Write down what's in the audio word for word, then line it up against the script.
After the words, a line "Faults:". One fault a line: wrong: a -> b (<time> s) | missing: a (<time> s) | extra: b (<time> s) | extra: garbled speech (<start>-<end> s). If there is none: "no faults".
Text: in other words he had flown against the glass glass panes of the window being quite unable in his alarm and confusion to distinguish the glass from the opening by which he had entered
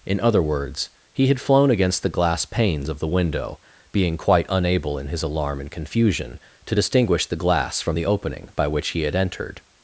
in other words he had flown against the glass panes of the window being quite unable in his alarm and confusion to distinguish the glass from the opening by which he had entered
Faults:
missing: glass (2.5 s)